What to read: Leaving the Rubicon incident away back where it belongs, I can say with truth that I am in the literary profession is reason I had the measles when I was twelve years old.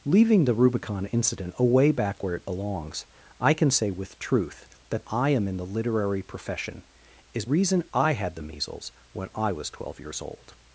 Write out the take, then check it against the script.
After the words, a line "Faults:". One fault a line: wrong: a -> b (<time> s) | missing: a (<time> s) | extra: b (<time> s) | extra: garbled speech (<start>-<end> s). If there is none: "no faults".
Leaving the Rubicon incident away back where it belongs, I can say with truth that I am in the literary profession is reason I had the measles when I was twelve years old.
Faults:
no faults